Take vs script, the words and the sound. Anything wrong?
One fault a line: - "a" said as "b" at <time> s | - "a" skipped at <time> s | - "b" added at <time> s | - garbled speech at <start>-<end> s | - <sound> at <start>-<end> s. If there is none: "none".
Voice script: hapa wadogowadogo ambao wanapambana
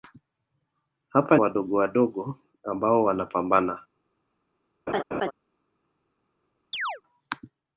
- laugh at 4.9-5.3 s
- chirp at 6.7-7.0 s